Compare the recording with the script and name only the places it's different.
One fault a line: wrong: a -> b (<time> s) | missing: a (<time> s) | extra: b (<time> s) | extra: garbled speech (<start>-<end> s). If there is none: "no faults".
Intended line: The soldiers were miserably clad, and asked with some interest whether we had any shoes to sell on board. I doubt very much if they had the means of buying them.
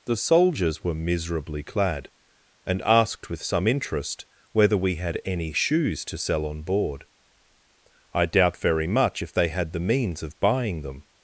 no faults